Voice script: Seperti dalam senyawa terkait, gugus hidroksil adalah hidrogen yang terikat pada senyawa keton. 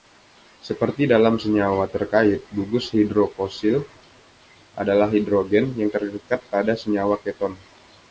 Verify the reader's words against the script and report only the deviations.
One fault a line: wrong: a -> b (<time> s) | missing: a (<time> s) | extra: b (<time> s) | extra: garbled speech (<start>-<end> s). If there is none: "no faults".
no faults